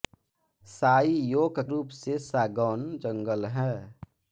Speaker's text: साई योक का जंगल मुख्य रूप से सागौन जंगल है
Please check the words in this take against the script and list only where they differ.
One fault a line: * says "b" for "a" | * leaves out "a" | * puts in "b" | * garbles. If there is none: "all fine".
* leaves out "का जंगल मुख्य"